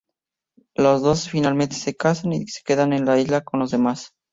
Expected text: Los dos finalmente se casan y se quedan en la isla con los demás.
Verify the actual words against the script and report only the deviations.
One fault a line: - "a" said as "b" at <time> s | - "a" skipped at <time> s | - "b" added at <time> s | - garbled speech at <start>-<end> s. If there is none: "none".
none